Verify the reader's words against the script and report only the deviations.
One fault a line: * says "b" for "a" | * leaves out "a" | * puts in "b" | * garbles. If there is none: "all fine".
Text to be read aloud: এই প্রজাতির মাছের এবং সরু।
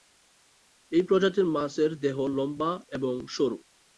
* puts in "দেহ লম্বা"